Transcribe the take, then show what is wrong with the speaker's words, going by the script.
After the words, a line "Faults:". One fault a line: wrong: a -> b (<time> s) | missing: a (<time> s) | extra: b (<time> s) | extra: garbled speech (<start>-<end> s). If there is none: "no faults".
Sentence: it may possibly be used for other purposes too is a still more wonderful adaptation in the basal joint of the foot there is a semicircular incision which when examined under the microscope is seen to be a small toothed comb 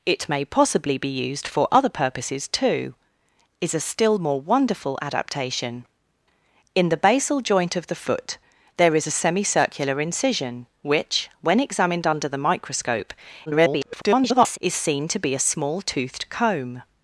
it may possibly be used for other purposes too is a still more wonderful adaptation in the basal joint of the foot there is a semicircular incision which when examined under the microscope [garbled] is seen to be a small toothed comb
Faults:
extra: garbled speech (13.5-14.6 s)